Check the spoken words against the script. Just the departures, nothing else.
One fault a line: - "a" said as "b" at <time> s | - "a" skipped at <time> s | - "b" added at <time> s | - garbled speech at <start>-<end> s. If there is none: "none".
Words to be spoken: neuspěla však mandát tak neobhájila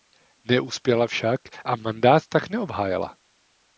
- "a" added at 1.6 s